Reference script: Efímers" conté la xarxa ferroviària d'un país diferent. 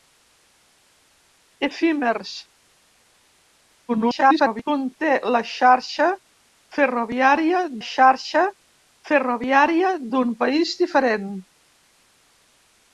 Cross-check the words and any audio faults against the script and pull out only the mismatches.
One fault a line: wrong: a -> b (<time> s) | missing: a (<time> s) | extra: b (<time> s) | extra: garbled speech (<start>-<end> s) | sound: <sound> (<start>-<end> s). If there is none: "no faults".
extra: garbled speech (3.9-4.6 s)
extra: xarxa ferroviària (7.9 s)